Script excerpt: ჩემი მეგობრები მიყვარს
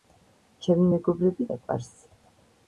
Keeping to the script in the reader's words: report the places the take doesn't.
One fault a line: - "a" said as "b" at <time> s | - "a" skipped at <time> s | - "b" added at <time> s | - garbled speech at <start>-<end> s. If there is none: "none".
none